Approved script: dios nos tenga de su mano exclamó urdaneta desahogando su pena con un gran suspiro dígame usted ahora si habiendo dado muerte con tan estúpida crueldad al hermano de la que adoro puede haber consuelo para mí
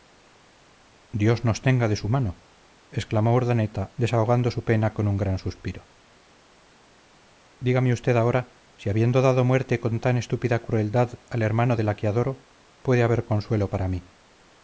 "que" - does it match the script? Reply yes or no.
yes